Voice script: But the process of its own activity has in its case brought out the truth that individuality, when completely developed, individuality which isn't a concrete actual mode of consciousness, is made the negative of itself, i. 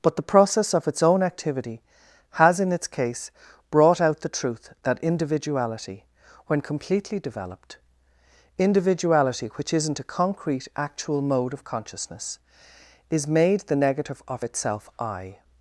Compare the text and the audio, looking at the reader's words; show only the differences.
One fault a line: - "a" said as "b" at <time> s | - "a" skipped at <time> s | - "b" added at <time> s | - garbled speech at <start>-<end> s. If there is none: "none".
none